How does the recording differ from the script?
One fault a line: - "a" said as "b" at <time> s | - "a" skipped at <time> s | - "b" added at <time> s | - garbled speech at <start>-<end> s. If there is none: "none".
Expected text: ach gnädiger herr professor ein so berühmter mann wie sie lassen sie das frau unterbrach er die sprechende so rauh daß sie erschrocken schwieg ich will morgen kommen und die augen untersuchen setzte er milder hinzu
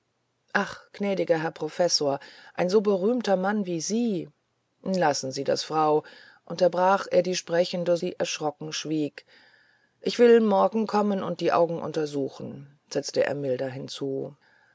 - "so rauh daß" skipped at 8.0 s